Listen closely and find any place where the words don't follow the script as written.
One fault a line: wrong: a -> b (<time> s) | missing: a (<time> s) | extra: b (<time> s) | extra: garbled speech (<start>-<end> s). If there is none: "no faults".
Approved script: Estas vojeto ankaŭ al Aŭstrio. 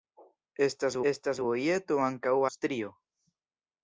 extra: estas (1.1 s)
missing: al (2.4 s)